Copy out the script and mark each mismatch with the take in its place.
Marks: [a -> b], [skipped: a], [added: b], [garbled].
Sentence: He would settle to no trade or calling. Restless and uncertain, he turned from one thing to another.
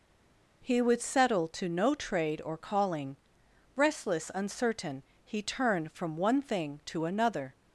He would settle to no trade or calling. Restless [skipped: and] uncertain, he turned from one thing to another.